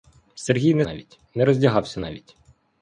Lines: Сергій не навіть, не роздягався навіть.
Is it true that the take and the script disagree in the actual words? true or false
false